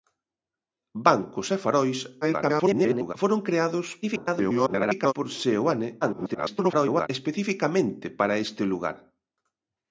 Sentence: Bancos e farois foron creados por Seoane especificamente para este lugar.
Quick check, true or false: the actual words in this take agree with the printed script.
false